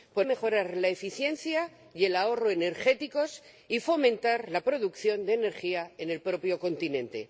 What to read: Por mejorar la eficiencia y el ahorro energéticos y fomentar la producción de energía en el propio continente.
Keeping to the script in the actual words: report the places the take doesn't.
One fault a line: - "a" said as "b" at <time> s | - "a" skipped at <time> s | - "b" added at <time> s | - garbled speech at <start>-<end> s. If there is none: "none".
none